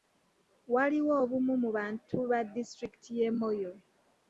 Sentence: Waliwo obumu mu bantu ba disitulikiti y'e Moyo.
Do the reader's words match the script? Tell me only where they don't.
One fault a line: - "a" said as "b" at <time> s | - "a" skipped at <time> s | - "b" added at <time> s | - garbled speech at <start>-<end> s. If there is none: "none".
none